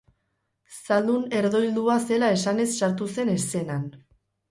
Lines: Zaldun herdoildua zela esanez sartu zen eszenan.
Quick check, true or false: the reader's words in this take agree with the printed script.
true